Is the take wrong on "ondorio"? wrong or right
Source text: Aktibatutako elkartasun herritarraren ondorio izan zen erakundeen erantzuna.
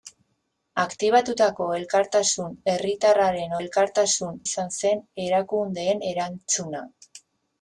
wrong